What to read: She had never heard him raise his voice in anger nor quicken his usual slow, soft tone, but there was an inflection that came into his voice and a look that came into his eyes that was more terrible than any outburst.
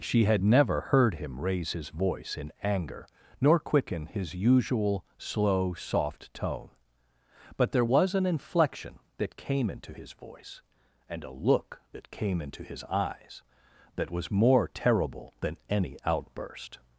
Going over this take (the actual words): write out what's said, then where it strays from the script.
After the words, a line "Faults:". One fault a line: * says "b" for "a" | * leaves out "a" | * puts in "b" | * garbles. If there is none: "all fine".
She had never heard him raise his voice in anger nor quicken his usual slow, soft tone, but there was an inflection that came into his voice and a look that came into his eyes that was more terrible than any outburst.
Faults:
all fine